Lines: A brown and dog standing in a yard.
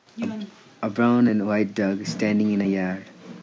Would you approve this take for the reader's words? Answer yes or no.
no